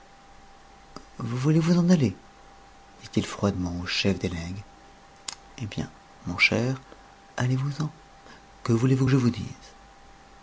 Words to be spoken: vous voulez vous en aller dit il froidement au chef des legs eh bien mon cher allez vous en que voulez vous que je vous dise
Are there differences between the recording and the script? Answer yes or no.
no